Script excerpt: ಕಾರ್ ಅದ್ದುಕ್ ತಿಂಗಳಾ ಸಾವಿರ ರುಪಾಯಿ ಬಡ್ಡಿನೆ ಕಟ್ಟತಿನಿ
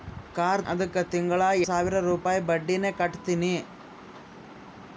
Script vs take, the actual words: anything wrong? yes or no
no